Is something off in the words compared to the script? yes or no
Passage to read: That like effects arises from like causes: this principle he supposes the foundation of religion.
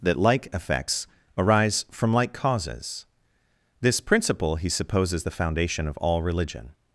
yes